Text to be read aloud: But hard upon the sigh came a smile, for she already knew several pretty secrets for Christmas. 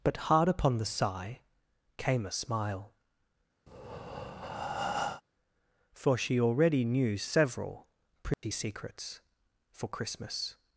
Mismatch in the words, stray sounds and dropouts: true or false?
true